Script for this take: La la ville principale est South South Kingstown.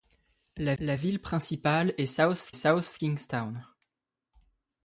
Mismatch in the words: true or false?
false